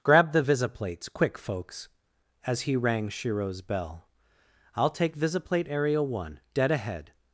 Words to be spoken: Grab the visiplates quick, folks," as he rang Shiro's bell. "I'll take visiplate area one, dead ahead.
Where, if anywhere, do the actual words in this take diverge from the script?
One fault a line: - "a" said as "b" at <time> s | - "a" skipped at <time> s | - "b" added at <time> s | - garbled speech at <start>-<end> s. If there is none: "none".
none